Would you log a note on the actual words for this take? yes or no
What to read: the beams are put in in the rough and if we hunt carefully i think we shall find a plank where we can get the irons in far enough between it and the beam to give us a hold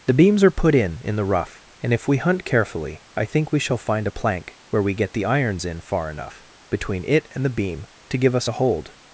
yes